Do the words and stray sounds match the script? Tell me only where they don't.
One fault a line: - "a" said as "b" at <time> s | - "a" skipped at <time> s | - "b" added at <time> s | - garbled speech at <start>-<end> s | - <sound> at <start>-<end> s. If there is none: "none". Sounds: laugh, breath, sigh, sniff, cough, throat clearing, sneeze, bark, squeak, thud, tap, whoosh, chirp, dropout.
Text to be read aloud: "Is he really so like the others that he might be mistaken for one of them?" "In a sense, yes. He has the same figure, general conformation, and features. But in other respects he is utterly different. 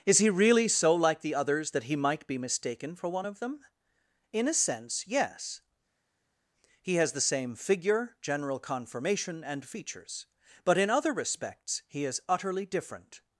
none